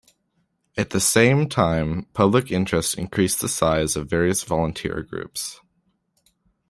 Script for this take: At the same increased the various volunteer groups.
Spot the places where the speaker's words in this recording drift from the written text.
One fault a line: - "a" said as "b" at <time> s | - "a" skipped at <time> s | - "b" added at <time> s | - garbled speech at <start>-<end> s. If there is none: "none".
- "time public interest" added at 1.5 s
- "size of" added at 3.5 s